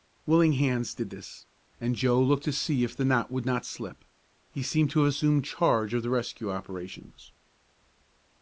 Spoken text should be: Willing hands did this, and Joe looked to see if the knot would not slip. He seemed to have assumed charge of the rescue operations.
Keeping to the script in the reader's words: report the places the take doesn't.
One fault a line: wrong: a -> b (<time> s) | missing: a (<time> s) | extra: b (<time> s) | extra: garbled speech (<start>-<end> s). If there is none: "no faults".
no faults